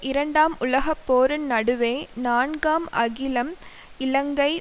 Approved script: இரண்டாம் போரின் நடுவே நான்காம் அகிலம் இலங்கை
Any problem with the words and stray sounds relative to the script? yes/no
yes